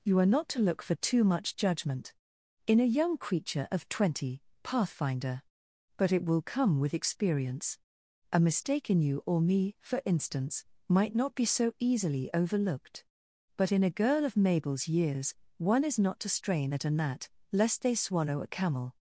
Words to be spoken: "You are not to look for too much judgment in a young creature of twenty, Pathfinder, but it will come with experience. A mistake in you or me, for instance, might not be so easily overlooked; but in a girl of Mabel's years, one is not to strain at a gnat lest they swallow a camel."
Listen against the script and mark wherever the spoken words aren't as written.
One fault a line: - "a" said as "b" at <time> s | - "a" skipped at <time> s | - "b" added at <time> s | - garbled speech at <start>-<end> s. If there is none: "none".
none